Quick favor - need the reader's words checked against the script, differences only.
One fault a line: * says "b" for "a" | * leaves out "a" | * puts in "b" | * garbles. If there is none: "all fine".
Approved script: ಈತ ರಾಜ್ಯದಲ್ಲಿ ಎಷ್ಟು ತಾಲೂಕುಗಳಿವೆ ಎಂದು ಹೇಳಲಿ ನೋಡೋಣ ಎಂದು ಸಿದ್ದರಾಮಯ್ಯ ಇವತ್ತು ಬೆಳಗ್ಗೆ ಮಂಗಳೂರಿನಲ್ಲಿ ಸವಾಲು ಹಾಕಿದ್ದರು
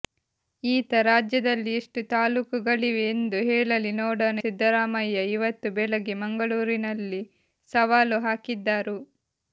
* leaves out "ಎಂದು"